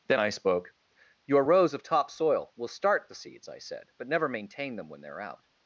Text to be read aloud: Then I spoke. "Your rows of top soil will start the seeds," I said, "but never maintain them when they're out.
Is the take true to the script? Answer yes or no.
yes